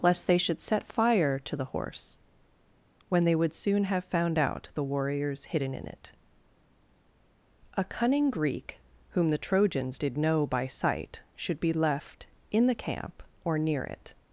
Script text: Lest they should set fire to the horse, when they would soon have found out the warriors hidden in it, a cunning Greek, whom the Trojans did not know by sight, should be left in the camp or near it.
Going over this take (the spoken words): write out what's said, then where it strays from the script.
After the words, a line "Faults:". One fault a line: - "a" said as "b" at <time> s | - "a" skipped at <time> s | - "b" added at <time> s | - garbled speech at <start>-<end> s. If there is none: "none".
Lest they should set fire to the horse, when they would soon have found out the warriors hidden in it, a cunning Greek, whom the Trojans did know by sight, should be left in the camp or near it.
Faults:
- "not" skipped at 10.2 s